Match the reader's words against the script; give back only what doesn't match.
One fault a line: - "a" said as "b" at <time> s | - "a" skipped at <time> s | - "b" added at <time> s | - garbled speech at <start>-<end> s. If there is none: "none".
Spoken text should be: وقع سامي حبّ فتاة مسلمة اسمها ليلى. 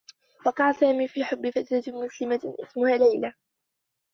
- "في" added at 1.1 s